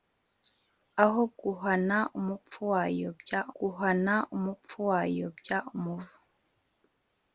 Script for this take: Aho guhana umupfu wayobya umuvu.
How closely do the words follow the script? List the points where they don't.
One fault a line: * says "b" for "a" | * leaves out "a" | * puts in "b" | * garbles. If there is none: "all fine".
* puts in "guhana umupfu wayobya"